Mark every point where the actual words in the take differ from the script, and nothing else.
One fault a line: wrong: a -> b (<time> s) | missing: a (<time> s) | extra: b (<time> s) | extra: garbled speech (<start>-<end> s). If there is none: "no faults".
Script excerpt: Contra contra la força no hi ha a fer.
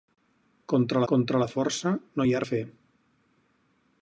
no faults